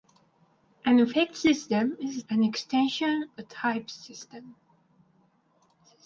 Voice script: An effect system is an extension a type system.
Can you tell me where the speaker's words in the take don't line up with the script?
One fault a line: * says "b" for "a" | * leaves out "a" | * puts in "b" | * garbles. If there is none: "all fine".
all fine